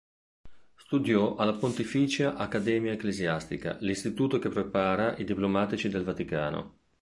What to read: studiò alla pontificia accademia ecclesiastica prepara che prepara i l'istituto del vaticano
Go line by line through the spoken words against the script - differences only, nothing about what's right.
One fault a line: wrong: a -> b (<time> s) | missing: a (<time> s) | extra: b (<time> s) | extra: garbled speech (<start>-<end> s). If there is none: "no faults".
wrong: prepara -> l'istituto (3.8 s)
wrong: l'istituto -> diplomatici (5.2 s)